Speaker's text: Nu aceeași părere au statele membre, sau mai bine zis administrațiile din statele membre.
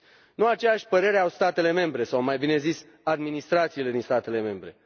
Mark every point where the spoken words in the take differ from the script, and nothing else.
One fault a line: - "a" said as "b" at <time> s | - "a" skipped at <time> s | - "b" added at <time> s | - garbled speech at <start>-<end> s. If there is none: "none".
none